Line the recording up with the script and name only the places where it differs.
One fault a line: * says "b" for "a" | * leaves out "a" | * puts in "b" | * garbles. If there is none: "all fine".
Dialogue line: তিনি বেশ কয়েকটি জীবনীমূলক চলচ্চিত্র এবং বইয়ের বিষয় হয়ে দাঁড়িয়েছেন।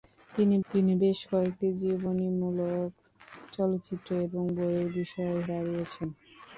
* puts in "তিনি"
* leaves out "হয়ে"